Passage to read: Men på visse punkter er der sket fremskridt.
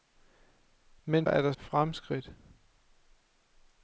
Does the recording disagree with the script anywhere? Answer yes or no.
yes